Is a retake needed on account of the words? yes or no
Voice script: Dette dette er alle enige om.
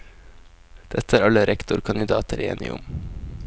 yes